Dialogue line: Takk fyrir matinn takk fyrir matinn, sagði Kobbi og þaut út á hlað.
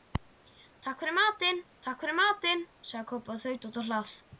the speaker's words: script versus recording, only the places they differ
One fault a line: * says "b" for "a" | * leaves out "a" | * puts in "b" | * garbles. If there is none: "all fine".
all fine